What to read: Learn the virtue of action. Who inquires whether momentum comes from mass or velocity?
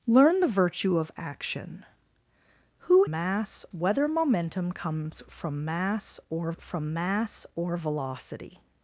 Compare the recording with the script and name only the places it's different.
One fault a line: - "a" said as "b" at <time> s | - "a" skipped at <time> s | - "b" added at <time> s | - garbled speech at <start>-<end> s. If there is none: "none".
- "inquires" said as "mass" at 3.1 s
- "from mass or" added at 6.6 s